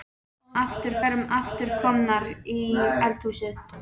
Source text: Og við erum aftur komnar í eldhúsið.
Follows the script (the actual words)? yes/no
no